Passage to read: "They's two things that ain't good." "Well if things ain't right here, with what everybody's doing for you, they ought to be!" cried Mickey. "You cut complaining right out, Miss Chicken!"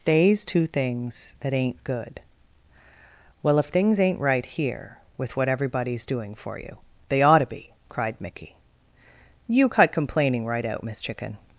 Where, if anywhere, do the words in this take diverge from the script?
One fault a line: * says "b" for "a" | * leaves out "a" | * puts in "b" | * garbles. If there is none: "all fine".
all fine